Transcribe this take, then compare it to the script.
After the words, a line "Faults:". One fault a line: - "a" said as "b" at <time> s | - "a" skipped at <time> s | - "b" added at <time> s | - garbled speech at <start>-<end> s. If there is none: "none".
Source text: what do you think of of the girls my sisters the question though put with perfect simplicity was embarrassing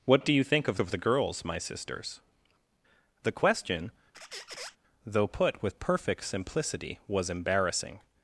what do you think of of the girls my sisters the question though put with perfect simplicity was embarrassing
Faults:
none